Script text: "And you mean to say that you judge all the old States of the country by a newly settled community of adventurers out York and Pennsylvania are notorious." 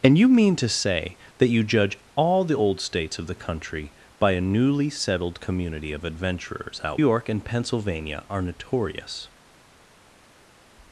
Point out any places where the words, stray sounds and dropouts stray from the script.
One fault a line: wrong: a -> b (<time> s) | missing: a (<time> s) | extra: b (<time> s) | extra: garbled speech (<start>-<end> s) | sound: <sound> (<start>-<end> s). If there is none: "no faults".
no faults